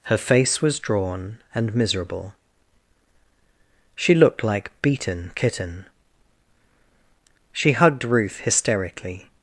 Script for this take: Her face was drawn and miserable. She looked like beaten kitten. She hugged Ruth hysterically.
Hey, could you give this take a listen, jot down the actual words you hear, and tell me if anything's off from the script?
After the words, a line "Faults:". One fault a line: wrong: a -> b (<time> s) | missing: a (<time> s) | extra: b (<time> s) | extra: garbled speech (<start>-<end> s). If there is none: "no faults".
Her face was drawn and miserable. She looked like beaten kitten. She hugged Ruth hysterically.
Faults:
no faults